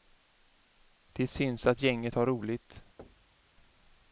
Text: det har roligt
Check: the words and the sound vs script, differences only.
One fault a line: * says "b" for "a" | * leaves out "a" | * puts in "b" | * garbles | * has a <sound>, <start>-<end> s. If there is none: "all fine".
* puts in "syns att gänget"
* has a thud, 3.0-3.4 s